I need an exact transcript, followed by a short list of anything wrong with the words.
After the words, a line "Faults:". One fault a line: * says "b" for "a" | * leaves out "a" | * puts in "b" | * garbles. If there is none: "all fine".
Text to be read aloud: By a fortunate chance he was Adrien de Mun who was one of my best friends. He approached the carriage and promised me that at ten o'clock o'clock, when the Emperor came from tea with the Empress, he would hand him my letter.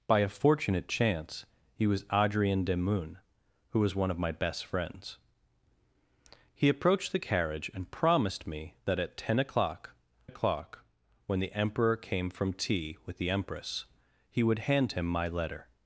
By a fortunate chance he was Adrien de Mun who was one of my best friends. He approached the carriage and promised me that at ten o'clock o'clock, when the Emperor came from tea with the Empress, he would hand him my letter.
Faults:
all fine